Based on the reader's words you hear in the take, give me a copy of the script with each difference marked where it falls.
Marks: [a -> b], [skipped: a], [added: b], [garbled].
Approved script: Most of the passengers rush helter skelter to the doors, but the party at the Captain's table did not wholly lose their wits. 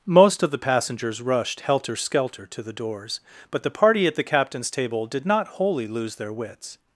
Most of the passengers [rush -> rushed] helter skelter to the doors, but the party at the Captain's table did not wholly lose their wits.